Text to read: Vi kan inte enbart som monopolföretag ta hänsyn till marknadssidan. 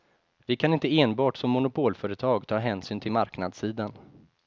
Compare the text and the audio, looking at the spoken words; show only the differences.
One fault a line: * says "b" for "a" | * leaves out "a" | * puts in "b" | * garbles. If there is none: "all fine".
all fine